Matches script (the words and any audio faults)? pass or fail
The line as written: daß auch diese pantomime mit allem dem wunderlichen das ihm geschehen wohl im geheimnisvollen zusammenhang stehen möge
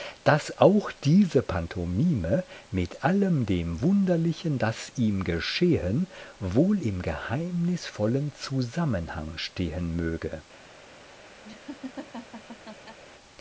fail